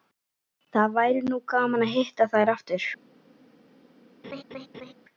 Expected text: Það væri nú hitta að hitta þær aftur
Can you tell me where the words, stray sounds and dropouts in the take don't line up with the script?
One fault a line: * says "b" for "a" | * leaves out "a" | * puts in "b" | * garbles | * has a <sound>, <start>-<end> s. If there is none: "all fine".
* says "gaman" for "hitta"
* has a laugh, 4.2-4.9 s